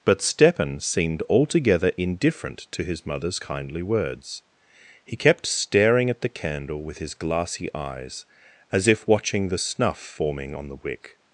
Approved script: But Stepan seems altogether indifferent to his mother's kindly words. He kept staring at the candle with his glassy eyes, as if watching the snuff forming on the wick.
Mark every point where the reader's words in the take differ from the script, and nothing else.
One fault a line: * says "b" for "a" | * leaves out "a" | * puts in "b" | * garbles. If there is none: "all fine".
* says "seemed" for "seems"